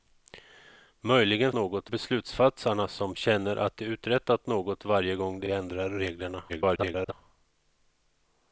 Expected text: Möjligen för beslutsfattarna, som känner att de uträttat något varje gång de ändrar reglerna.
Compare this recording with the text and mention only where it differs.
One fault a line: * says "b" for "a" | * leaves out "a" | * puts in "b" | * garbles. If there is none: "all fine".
* says "något" for "för"
* puts in "de"
* garbles